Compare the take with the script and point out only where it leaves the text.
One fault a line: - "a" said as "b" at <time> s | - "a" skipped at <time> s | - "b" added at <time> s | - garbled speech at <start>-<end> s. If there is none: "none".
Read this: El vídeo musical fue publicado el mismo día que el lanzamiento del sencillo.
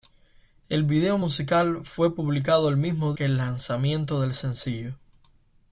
- "día" skipped at 3.1 s